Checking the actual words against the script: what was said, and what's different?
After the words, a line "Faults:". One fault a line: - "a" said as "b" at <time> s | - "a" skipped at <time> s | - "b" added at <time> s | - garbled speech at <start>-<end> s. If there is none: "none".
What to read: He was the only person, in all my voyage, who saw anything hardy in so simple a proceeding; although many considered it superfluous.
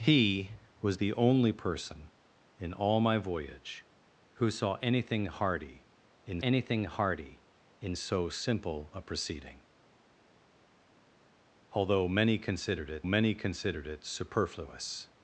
He was the only person, in all my voyage, who saw anything hardy in anything hardy in so simple a proceeding; although many considered it many considered it superfluous.
Faults:
- "anything hardy in" added at 6.4 s
- "many considered it" added at 13.0 s